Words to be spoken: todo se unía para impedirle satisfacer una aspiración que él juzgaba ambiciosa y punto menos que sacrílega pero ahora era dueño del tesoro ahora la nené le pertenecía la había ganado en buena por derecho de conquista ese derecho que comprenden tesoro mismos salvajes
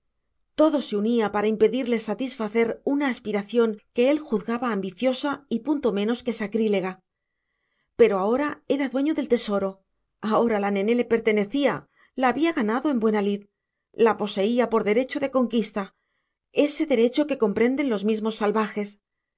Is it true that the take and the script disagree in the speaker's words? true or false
true